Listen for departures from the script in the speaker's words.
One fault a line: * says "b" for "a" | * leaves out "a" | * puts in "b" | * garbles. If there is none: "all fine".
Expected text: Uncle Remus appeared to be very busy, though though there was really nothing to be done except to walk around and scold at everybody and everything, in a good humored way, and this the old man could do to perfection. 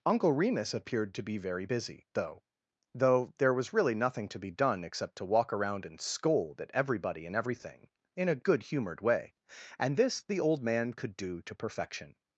all fine